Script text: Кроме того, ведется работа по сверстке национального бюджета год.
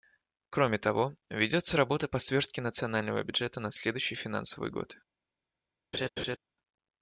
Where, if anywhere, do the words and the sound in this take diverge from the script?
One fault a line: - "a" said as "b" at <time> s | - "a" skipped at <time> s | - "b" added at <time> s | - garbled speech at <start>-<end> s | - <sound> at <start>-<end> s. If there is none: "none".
- "на следующий финансовый" added at 3.6 s
- laugh at 5.9-6.4 s